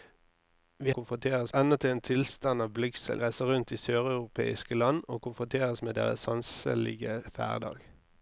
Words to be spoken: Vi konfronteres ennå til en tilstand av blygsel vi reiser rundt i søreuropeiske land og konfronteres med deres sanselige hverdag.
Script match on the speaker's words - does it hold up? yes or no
yes